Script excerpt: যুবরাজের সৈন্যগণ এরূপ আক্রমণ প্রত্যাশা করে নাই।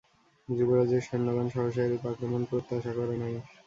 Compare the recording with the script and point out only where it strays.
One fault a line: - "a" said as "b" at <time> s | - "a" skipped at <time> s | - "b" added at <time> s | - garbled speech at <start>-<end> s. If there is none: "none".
- "সহসা" added at 1.5 s